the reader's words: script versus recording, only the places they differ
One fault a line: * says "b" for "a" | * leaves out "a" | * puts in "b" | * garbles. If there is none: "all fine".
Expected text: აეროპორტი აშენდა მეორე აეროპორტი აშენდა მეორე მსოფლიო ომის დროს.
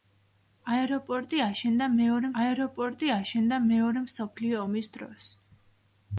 all fine